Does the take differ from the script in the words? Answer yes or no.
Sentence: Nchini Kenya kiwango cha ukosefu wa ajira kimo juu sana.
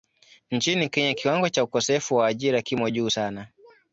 no